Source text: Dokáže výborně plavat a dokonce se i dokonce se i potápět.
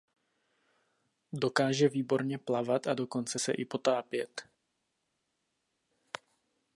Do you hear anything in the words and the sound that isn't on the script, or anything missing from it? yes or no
yes